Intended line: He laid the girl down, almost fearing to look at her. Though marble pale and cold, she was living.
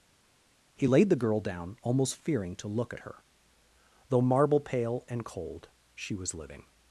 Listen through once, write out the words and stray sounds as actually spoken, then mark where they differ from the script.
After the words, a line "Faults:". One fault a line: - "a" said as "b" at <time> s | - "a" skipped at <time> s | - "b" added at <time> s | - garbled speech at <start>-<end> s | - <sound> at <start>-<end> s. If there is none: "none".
He laid the girl down, almost fearing to look at her. Though marble pale and cold, she was living.
Faults:
none